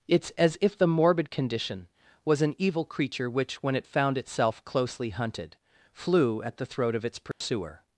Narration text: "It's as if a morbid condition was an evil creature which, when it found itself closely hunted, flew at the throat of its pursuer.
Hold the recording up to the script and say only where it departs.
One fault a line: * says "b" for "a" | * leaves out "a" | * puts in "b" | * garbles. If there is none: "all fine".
* says "the" for "a"